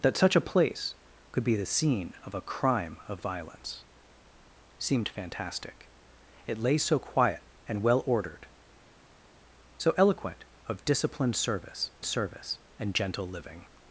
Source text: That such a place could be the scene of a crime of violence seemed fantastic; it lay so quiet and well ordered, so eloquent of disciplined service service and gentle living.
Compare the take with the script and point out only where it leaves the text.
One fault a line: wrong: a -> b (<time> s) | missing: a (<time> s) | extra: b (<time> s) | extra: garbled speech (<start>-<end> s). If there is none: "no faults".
no faults